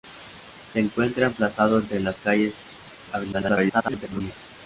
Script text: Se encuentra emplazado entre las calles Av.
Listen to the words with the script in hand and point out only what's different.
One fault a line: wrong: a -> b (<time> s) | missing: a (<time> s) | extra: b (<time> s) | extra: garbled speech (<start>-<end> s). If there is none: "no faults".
extra: garbled speech (3.3-4.2 s)